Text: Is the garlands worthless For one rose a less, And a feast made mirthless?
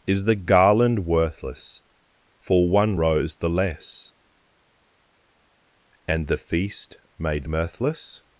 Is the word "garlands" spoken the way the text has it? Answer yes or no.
no